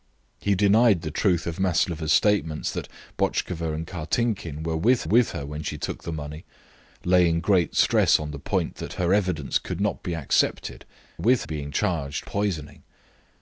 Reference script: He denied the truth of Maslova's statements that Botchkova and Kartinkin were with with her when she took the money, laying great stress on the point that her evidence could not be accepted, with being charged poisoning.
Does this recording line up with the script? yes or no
yes